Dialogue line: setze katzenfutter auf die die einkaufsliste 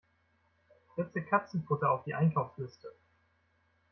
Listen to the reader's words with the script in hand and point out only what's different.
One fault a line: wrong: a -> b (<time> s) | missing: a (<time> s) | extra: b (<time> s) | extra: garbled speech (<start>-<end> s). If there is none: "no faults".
missing: die (2.1 s)